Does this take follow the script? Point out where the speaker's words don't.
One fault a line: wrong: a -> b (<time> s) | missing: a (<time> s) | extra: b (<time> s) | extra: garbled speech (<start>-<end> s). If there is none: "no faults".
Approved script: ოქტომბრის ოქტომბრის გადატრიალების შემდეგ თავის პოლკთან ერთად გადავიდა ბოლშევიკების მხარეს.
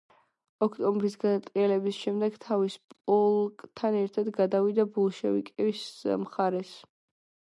missing: ოქტომბრის (1.1 s)